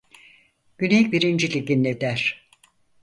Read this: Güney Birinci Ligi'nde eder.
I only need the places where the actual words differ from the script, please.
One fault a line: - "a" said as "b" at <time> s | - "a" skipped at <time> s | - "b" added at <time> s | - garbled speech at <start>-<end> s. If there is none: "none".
none